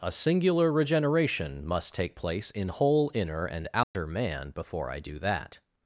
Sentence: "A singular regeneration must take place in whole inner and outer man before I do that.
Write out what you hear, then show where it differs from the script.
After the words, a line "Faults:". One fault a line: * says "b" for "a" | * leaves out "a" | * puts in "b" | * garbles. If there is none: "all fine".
"A singular regeneration must take place in whole inner and outer man before I do that.
Faults:
all fine